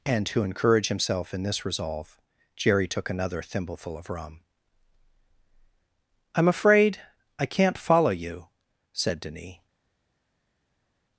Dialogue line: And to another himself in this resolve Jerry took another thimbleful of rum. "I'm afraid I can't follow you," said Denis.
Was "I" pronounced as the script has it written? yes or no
yes